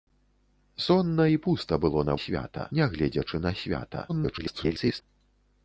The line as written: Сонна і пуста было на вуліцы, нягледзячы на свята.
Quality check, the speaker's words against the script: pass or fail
fail